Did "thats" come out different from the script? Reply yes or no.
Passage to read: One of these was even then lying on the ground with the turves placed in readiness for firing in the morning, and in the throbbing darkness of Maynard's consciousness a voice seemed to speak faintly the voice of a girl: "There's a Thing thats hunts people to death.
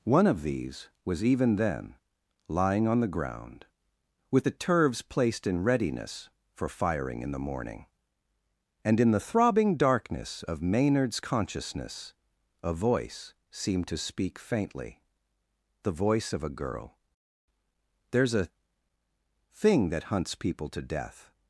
yes